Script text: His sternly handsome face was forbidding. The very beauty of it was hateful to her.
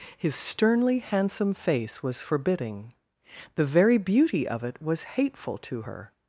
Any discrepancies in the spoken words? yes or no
no